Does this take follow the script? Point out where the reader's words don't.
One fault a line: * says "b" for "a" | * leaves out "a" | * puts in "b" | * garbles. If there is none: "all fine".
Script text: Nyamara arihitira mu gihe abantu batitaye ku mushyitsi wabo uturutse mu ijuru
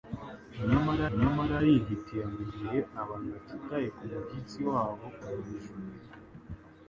* puts in "nyamara"
* leaves out "uturutse"